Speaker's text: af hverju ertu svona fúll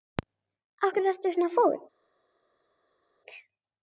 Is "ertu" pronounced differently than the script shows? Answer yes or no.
no